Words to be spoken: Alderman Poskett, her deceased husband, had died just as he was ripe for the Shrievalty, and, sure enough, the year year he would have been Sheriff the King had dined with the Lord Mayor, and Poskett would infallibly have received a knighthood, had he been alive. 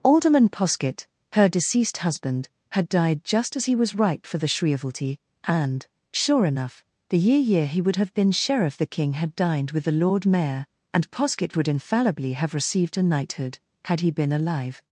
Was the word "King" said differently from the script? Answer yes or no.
no